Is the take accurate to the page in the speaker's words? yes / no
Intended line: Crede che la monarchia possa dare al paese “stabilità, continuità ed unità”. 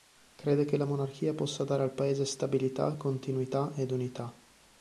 yes